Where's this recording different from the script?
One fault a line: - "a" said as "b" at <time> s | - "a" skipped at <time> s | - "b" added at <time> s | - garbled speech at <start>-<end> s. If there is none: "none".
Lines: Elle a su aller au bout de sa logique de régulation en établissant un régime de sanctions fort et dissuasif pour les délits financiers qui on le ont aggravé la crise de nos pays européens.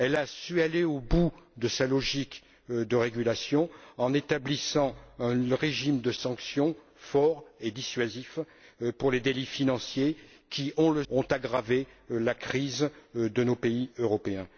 none